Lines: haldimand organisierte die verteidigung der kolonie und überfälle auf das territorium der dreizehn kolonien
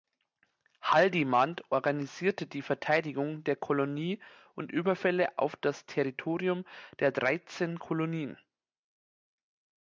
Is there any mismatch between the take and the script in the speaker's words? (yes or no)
no